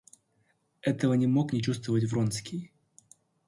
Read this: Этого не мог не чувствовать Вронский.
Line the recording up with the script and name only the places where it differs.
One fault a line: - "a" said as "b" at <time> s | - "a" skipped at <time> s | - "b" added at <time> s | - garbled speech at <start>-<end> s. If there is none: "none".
none